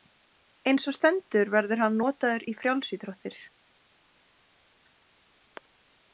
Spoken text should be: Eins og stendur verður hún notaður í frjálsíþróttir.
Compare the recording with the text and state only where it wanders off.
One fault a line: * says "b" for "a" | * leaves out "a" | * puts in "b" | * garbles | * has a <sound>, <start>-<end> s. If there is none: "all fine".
* says "hann" for "hún"